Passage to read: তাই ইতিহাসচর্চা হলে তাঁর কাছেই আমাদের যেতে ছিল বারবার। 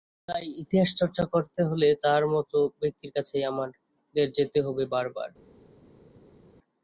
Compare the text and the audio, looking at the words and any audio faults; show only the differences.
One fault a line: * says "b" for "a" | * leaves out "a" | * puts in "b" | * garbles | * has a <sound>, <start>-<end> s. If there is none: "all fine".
* puts in "করতে"
* puts in "মতো ব্যক্তির"
* says "হবে" for "ছিল"